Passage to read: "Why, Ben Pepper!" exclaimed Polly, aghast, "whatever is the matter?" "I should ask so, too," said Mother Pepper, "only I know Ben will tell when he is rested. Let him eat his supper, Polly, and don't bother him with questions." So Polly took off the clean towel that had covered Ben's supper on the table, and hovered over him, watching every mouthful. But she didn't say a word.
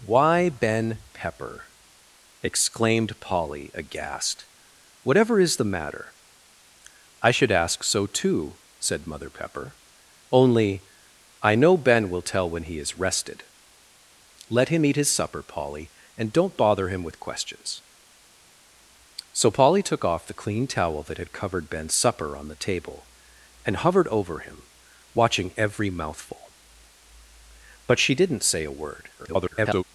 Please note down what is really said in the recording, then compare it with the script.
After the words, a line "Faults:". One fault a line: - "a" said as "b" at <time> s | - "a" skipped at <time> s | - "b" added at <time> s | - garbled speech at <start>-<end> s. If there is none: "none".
"Why, Ben Pepper!" exclaimed Polly, aghast, "whatever is the matter?" "I should ask so, too," said Mother Pepper, "only I know Ben will tell when he is rested. Let him eat his supper, Polly, and don't bother him with questions." So Polly took off the clean towel that had covered Ben's supper on the table, and hovered over him, watching every mouthful. But she didn't say a word. [garbled]
Faults:
- garbled speech at 29.2-29.8 s